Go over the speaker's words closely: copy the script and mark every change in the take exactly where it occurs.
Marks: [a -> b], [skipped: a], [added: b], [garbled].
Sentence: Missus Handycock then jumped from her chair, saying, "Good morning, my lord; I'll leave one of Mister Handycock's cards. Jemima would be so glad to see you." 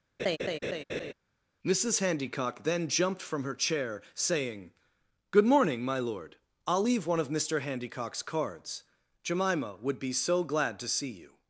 Missus Handycock then jumped from her chair, saying, "Good morning, my lord; I'll leave one of Mister Handycock's cards. Jemima would be so glad to see you."